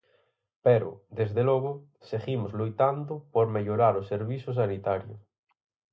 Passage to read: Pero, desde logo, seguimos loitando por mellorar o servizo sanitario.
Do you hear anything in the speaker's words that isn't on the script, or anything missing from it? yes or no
no